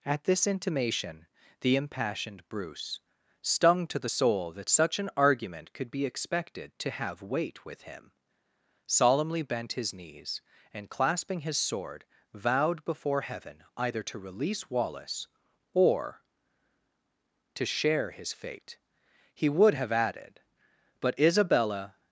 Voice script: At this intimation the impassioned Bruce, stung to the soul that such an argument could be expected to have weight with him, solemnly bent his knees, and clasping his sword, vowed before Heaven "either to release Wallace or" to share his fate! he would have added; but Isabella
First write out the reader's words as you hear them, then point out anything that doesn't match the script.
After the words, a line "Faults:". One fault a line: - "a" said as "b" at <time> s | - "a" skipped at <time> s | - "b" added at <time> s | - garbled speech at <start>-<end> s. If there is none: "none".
At this intimation the impassioned Bruce, stung to the soul that such an argument could be expected to have weight with him, solemnly bent his knees, and clasping his sword, vowed before Heaven "either to release Wallace or" to share his fate! he would have added; but Isabella
Faults:
none